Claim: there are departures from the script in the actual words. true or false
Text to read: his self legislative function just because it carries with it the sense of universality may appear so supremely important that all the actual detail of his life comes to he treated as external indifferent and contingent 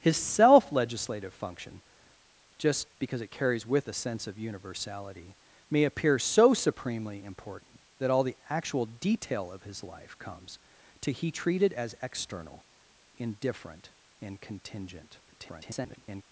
true